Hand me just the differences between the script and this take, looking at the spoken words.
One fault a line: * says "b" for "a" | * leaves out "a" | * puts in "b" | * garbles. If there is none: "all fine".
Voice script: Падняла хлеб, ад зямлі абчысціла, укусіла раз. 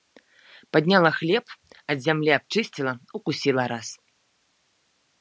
all fine